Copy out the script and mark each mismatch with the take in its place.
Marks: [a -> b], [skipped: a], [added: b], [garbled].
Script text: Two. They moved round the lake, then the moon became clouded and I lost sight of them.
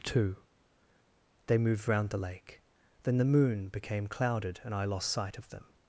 Two. They moved round the lake, then the moon became clouded and I lost sight of them.